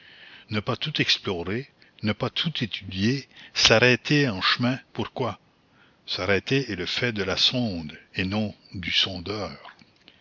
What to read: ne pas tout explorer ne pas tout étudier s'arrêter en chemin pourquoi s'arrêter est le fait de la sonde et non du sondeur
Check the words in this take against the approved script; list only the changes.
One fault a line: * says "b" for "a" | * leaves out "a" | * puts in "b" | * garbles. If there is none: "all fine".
all fine